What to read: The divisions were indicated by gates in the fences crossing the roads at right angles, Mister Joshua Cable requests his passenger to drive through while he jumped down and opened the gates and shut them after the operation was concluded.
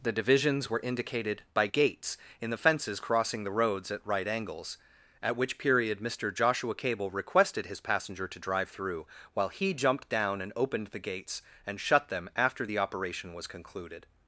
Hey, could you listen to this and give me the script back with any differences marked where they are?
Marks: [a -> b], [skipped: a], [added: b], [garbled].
The divisions were indicated by gates in the fences crossing the roads at right angles, [added: at which period] Mister Joshua Cable [requests -> requested] his passenger to drive through while he jumped down and opened the gates and shut them after the operation was concluded.